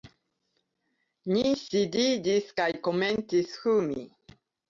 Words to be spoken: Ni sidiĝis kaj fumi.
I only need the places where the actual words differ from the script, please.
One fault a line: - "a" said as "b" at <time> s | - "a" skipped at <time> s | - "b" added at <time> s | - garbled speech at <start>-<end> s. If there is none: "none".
- "komencis" added at 2.9 s